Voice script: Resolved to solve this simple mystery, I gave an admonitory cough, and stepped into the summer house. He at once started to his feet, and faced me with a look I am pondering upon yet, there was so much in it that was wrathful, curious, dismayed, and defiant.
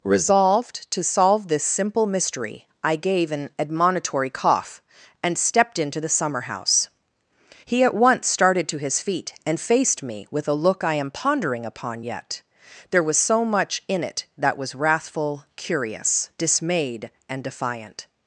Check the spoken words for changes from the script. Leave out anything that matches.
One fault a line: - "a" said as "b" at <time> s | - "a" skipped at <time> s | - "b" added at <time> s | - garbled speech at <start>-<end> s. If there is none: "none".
none